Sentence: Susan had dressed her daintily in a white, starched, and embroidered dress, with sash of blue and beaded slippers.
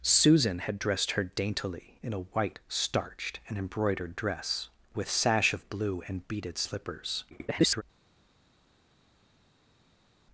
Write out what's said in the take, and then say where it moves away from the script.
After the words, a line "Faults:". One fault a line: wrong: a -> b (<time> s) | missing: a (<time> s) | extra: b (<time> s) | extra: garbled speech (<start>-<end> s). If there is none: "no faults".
Susan had dressed her daintily in a white, starched, and embroidered dress, with sash of blue and beaded slippers. [garbled]
Faults:
extra: garbled speech (7.3-7.8 s)